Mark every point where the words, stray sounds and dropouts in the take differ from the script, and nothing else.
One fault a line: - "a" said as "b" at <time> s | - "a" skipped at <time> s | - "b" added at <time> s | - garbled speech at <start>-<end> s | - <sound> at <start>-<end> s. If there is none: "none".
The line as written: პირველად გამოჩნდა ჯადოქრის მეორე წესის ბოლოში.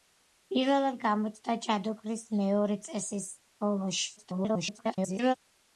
- garbled speech at 4.2-5.3 s